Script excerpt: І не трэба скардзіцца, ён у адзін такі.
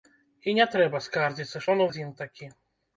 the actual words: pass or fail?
pass